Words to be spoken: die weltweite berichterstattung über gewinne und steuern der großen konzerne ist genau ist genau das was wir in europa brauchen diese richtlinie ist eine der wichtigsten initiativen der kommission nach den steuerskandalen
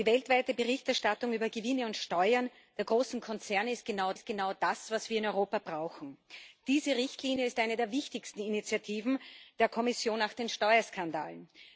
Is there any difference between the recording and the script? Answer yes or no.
no